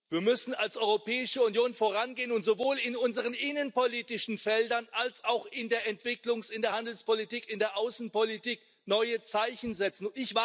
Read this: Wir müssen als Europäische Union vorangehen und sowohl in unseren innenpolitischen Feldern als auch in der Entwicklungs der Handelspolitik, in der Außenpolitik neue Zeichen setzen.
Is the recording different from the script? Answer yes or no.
yes